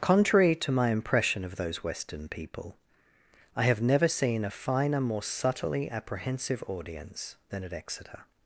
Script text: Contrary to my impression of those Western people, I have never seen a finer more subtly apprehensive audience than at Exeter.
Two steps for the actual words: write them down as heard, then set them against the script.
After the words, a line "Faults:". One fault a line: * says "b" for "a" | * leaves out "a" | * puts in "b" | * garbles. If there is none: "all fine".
Contrary to my impression of those Western people, I have never seen a finer more subtly apprehensive audience than at Exeter.
Faults:
all fine